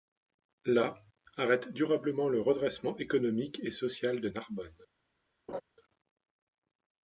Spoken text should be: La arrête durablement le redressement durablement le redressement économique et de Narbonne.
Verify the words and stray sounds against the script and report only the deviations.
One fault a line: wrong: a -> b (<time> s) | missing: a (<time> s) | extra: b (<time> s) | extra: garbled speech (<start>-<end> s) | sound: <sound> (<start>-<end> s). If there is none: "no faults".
missing: durablement le redressement (3.0 s)
extra: social (3.7 s)
sound: laugh (5.5-5.6 s)